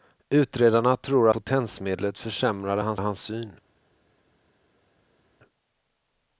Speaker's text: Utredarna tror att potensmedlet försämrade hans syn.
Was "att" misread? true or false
true